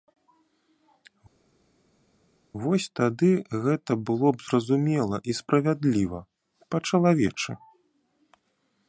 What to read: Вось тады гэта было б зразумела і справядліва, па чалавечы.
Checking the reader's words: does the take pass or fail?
pass